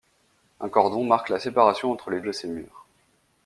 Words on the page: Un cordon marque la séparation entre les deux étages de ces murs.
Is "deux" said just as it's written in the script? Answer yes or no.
no